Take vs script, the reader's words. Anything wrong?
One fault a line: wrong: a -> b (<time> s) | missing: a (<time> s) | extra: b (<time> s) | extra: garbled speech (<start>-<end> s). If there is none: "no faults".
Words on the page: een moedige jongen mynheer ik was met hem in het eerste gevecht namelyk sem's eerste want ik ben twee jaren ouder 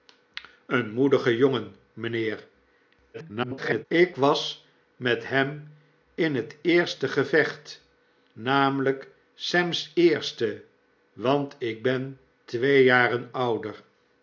extra: garbled speech (3.1-3.9 s)